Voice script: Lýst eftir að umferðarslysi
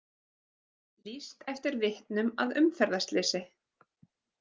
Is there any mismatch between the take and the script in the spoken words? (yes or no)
yes